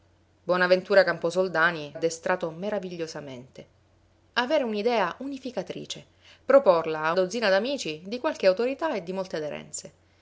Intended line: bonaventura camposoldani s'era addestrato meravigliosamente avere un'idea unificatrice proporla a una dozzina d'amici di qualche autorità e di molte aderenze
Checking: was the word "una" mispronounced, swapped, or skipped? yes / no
yes